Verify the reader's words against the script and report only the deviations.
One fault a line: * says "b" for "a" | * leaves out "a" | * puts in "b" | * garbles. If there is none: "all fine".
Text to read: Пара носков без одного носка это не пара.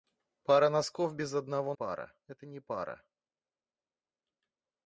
* says "пара" for "носка"